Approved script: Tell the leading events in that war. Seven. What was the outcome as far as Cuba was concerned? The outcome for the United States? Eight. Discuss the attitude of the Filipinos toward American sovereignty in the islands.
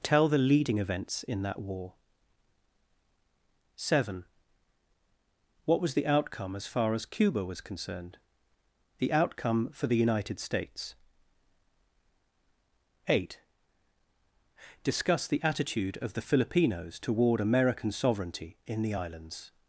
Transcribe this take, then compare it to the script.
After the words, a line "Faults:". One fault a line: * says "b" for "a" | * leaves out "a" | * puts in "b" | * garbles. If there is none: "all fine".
Tell the leading events in that war. Seven. What was the outcome as far as Cuba was concerned? The outcome for the United States? Eight. Discuss the attitude of the Filipinos toward American sovereignty in the islands.
Faults:
all fine